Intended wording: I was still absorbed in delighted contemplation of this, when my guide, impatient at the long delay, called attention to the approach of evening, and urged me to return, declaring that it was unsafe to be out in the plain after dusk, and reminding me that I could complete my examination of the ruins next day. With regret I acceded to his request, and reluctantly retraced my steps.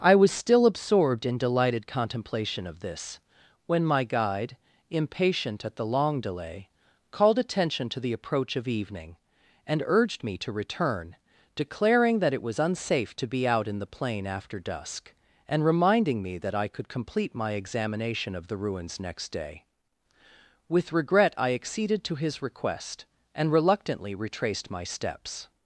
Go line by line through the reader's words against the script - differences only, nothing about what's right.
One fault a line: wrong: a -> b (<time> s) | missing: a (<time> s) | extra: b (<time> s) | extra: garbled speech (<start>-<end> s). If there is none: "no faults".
no faults